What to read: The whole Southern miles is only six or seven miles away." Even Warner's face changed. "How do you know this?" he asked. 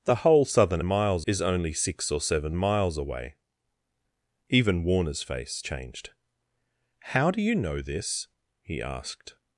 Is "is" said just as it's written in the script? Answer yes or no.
yes